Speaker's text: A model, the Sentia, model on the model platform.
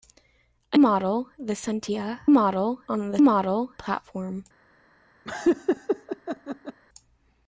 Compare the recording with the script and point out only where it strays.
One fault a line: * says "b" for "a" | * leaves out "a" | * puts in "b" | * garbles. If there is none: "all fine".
all fine